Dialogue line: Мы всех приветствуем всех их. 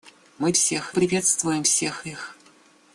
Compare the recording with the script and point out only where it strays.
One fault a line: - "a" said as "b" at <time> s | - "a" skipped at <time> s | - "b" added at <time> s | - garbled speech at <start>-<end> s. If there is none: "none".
none